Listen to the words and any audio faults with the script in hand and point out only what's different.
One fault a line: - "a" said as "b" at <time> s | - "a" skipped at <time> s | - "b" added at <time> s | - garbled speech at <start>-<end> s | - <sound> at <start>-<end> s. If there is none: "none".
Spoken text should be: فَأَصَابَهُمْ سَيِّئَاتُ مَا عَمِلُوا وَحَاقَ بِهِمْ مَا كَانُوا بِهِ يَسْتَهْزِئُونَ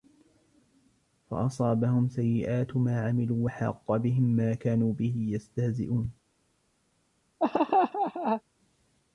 - laugh at 7.4-8.4 s